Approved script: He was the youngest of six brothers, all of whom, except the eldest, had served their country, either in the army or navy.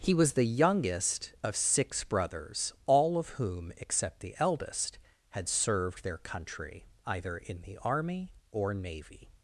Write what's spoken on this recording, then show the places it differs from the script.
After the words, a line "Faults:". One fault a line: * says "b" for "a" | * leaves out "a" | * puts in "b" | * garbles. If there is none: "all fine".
He was the youngest of six brothers, all of whom, except the eldest, had served their country, either in the army or navy.
Faults:
all fine